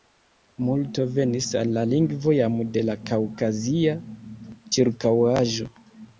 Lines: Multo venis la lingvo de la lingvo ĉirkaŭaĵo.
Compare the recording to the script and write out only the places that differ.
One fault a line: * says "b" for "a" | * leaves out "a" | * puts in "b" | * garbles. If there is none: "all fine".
* puts in "al"
* puts in "jam"
* says "kaŭkazia" for "lingvo"